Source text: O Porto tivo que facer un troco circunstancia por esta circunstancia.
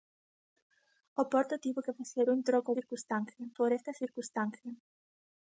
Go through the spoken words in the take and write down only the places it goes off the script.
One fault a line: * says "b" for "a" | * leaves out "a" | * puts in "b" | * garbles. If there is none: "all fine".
all fine